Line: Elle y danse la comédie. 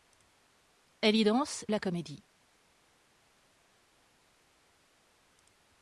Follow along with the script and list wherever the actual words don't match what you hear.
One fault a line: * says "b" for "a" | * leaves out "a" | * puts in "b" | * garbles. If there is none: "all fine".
all fine